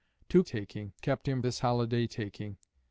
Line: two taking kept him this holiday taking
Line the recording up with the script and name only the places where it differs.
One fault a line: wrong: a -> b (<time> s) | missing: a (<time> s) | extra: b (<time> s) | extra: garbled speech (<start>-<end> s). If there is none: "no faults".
no faults